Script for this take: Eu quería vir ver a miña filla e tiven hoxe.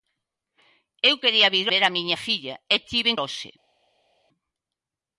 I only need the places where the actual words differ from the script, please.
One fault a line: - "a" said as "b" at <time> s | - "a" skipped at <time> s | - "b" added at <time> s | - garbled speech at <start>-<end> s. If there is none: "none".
none